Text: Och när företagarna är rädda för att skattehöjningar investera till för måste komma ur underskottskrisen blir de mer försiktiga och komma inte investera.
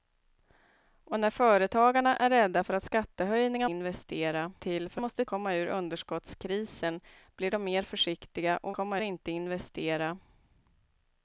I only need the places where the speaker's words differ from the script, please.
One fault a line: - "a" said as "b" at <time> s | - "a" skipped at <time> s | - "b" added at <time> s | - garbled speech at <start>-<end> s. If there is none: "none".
none